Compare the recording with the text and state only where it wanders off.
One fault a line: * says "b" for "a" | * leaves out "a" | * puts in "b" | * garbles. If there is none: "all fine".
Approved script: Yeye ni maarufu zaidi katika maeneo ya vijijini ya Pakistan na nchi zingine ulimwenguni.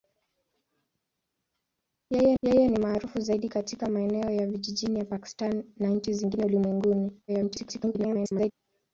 * puts in "yeye"
* garbles